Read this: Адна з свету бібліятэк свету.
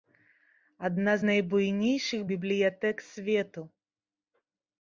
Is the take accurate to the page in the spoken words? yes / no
no